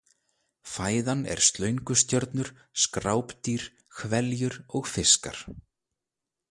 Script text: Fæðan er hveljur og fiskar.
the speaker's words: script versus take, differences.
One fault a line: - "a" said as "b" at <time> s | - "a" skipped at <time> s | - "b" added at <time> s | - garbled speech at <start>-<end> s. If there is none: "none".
- "slöngustjörnur skrápdýr" added at 1.5 s